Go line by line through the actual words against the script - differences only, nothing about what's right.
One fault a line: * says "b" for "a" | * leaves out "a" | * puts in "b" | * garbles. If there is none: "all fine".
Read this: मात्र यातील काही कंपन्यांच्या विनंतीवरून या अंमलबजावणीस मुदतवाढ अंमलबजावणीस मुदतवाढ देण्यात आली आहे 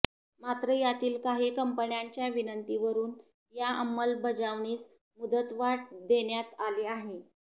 * leaves out "अंमलबजावणीस मुदतवाढ"